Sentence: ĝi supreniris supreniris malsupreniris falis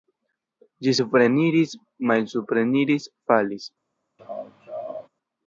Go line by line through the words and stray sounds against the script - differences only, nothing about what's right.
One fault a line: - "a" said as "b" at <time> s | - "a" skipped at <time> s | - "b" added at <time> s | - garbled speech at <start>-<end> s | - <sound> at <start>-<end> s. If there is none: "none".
- "supreniris" skipped at 1.7 s
- laugh at 4.2-5.1 s